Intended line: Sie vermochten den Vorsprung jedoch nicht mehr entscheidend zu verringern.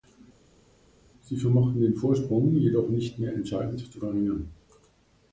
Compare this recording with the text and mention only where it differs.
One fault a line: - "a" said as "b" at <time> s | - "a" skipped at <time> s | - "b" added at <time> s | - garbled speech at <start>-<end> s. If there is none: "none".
none